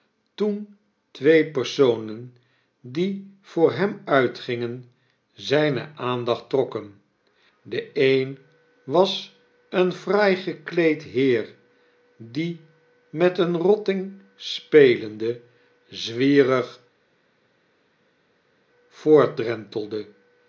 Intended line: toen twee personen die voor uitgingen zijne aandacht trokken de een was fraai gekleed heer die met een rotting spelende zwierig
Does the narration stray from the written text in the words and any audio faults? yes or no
yes